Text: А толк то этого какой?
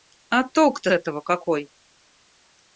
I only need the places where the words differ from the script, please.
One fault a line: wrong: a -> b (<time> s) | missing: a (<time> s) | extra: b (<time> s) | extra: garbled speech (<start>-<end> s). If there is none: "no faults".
no faults